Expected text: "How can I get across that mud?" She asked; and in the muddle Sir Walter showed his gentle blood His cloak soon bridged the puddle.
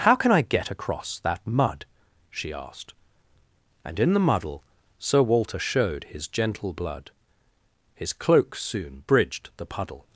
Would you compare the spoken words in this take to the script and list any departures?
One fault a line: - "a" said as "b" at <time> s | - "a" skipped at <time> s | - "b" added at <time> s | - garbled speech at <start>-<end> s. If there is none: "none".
none